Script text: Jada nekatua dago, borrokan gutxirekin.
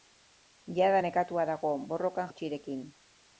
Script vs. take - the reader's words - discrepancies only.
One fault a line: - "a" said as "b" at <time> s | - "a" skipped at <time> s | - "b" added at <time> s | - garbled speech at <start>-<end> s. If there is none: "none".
none